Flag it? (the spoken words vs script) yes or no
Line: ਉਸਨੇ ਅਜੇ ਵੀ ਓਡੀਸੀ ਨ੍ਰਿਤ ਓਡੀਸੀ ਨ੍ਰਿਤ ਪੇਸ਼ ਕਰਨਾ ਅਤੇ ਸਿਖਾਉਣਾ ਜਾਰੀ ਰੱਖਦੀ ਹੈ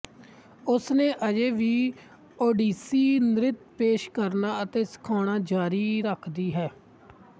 yes